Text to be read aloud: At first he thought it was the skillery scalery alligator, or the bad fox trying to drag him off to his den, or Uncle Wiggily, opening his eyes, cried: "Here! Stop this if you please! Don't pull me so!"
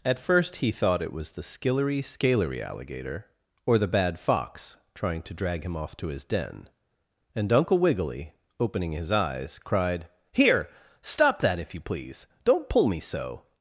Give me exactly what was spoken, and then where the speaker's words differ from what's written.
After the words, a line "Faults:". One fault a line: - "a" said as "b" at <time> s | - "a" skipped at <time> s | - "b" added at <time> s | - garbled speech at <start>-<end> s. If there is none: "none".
At first he thought it was the skillery scalery alligator, or the bad fox trying to drag him off to his den, and Uncle Wiggily, opening his eyes, cried: "Here! Stop that if you please! Don't pull me so!"
Faults:
- "or" said as "and" at 7.3 s
- "this" said as "that" at 11.4 s